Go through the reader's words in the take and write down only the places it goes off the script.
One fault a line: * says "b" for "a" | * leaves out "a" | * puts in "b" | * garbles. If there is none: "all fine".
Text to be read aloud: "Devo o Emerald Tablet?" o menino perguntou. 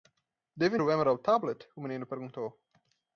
all fine